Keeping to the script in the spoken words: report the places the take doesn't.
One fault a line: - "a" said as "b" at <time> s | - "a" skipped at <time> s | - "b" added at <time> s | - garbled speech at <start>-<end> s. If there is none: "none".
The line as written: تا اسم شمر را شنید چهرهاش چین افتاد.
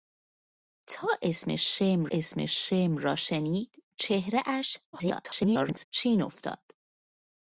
- "اسم شمر" added at 2.1 s
- garbled speech at 4.9-5.8 s